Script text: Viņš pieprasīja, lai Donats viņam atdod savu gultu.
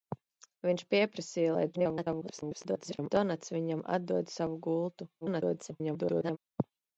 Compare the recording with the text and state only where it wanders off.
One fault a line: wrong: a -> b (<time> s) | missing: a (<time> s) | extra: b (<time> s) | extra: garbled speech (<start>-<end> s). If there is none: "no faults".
extra: garbled speech (1.7-3.1 s)
extra: garbled speech (5.2-6.4 s)